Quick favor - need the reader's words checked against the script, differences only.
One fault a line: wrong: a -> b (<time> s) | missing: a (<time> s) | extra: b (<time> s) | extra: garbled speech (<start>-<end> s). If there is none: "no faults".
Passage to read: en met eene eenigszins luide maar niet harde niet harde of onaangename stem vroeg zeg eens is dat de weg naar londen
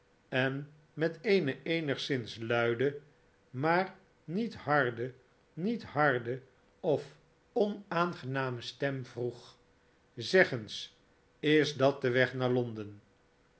no faults